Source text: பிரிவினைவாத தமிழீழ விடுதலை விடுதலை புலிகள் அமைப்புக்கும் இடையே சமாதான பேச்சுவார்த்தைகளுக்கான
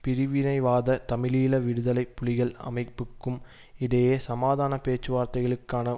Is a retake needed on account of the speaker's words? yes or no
yes